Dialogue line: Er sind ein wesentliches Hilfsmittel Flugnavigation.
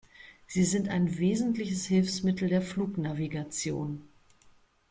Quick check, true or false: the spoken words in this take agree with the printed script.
false